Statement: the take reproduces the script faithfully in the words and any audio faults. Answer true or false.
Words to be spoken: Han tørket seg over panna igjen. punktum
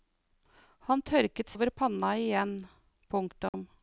false